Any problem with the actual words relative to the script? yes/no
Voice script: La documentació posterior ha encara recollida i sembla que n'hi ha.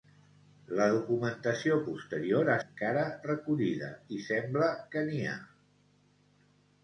no